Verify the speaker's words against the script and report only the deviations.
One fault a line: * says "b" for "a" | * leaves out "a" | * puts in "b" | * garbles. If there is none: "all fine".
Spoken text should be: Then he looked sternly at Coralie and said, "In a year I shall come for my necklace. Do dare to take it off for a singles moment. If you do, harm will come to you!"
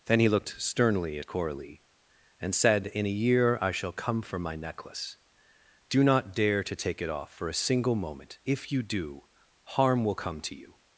* puts in "not"
* says "single" for "singles"